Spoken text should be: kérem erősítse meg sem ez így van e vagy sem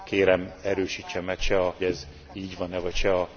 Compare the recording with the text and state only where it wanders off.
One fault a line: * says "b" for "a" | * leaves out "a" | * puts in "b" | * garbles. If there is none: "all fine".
all fine